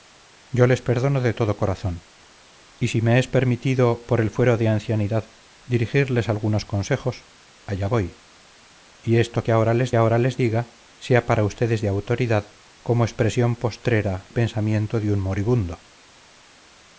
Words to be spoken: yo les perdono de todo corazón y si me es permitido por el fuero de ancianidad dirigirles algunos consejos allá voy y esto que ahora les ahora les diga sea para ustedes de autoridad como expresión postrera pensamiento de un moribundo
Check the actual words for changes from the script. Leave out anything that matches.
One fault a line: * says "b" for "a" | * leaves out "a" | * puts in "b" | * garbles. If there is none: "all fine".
all fine